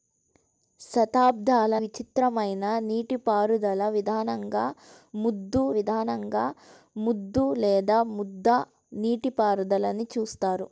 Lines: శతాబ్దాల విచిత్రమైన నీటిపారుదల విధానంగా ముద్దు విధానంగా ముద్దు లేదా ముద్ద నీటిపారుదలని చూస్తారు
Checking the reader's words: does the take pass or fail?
pass